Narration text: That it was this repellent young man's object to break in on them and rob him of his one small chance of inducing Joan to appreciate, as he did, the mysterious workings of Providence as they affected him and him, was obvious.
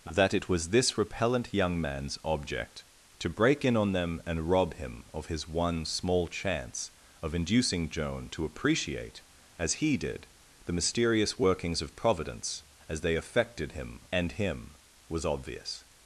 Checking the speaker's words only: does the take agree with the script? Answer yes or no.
yes